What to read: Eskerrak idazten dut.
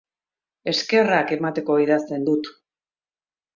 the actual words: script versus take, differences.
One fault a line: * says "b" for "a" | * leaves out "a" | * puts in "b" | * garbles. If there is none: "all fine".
* puts in "emateko"